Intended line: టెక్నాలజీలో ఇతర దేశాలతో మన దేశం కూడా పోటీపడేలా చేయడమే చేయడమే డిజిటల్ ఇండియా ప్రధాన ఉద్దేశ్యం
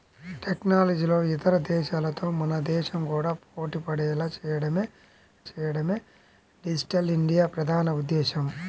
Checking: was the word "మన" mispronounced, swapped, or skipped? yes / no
no